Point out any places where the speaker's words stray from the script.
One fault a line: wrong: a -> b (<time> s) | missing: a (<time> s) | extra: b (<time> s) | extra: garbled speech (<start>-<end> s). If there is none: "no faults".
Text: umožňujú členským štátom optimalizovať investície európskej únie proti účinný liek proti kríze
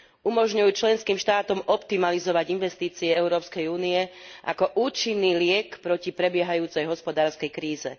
wrong: proti -> ako (4.4 s)
extra: prebiehajúcej hospodárskej (6.1 s)